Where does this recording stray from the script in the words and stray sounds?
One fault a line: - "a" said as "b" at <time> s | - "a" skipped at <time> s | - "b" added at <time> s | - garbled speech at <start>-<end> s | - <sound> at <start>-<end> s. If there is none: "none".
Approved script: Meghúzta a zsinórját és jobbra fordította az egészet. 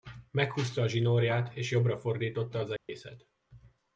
- dropout at 2.8-2.9 s